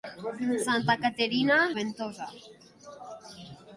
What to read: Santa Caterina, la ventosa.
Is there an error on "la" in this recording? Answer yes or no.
yes